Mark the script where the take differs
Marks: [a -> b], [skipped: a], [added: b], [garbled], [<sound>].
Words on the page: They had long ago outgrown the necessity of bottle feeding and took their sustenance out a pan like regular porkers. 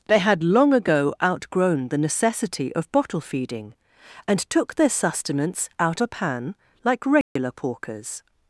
They had long ago outgrown the necessity of bottle feeding and took their sustenance out a pan like regular [dropout] porkers.